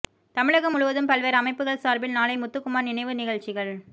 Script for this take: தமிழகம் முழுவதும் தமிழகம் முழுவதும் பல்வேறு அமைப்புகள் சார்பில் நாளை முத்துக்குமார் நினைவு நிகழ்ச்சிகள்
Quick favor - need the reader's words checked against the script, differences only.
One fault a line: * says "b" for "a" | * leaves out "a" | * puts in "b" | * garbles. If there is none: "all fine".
* leaves out "தமிழகம் முழுவதும்"